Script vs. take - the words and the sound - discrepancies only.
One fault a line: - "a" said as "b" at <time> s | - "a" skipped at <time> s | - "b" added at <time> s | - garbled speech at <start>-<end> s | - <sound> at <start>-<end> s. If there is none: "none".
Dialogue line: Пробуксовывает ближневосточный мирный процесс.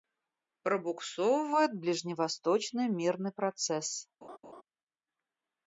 - laugh at 4.2-4.6 s